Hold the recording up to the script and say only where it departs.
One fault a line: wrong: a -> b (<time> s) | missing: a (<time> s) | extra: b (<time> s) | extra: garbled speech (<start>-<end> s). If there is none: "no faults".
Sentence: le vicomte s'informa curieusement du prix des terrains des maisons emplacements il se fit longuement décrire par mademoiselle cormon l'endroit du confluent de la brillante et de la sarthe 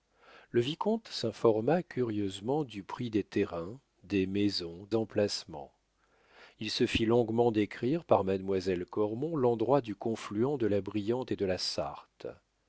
no faults